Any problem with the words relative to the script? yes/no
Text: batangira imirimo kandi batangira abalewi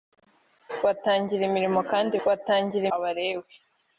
no